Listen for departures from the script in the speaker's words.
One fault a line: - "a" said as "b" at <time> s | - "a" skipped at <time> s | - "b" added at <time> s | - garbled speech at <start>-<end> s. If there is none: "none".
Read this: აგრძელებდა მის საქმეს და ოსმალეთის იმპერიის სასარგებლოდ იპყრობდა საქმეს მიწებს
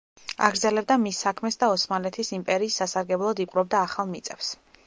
- "საქმეს" said as "ახალ" at 3.9 s